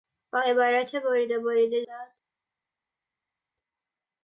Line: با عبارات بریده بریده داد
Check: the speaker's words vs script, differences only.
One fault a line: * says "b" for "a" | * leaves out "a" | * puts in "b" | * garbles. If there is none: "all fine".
all fine